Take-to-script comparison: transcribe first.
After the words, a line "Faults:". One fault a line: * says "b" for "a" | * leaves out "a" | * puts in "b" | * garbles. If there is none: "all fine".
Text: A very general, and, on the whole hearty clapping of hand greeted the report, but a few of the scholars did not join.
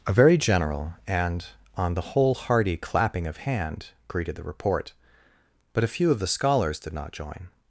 A very general, and, on the whole hearty clapping of hand greeted the report, but a few of the scholars did not join.
Faults:
all fine